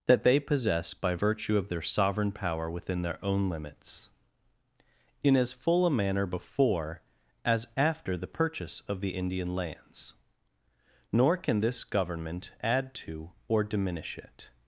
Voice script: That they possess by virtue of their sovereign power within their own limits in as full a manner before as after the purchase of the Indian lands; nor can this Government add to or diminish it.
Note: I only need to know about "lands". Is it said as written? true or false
true